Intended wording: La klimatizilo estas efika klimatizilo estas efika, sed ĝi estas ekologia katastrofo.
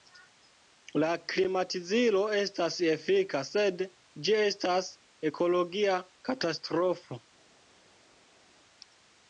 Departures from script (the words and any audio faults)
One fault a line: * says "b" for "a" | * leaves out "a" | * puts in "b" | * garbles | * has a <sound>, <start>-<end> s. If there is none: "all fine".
* leaves out "klimatizilo estas efika"